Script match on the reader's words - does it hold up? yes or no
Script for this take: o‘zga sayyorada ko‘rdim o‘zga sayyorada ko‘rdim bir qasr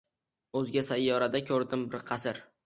no